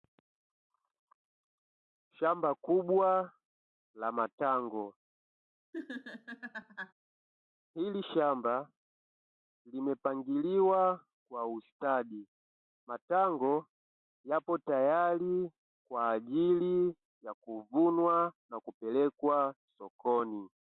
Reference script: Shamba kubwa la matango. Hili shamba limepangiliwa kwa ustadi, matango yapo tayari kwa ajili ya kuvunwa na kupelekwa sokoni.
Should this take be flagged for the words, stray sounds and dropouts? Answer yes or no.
yes